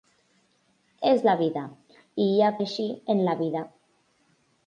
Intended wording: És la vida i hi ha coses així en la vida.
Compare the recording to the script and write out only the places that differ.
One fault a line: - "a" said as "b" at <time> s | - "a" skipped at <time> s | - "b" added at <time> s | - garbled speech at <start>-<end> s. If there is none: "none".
- "coses" skipped at 2.5 s